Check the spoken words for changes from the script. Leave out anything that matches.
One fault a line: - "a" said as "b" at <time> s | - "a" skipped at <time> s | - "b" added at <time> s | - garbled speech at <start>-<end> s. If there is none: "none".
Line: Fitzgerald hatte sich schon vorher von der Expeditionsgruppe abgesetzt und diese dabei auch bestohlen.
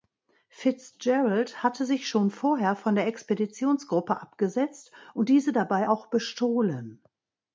none